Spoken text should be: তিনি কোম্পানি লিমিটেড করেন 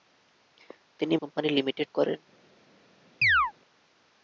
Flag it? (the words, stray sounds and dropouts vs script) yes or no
yes